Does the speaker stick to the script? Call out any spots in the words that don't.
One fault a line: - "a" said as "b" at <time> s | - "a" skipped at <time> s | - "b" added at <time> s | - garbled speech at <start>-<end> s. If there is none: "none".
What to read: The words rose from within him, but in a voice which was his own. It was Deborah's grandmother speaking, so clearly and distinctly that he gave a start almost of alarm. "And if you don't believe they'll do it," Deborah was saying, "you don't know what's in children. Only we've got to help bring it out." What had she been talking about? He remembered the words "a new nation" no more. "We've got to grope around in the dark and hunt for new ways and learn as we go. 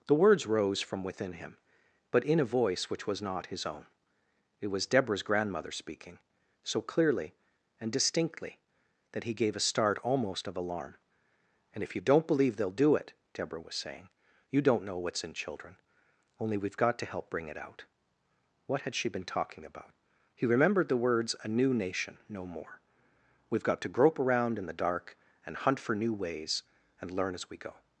- "not" added at 3.2 s